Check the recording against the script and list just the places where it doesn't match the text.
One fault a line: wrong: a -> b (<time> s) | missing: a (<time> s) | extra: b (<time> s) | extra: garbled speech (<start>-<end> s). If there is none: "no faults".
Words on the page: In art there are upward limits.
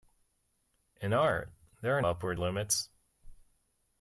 no faults